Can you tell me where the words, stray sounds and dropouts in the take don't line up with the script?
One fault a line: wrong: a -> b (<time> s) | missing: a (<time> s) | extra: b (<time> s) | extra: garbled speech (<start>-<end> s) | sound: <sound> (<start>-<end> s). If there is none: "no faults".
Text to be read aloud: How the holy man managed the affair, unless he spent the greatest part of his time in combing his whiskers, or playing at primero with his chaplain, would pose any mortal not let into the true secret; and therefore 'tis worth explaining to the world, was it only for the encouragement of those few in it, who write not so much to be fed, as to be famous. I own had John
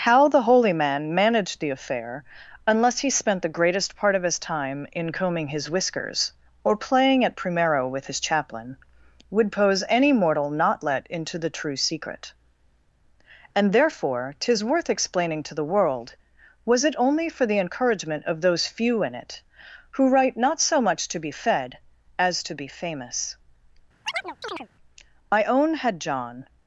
sound: chirp (24.0-24.7 s)